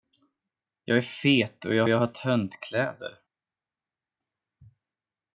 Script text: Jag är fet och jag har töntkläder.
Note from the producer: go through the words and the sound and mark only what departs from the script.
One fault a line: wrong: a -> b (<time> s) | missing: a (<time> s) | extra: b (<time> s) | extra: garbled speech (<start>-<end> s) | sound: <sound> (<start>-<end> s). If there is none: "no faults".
extra: jag (1.9 s)